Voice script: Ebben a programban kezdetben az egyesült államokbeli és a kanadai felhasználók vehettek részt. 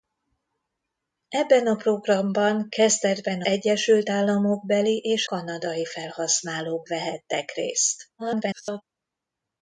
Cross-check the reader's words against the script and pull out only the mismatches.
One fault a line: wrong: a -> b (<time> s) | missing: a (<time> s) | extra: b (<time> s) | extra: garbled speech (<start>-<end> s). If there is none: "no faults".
missing: az (3.4 s)
missing: a (5.3 s)
extra: garbled speech (8.2-8.8 s)